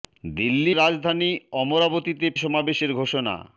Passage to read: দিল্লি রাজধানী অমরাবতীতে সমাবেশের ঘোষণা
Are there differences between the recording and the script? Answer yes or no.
no